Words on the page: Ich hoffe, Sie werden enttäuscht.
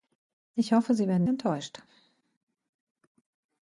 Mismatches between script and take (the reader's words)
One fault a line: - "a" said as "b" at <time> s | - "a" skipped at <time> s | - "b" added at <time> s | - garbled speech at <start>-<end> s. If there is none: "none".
none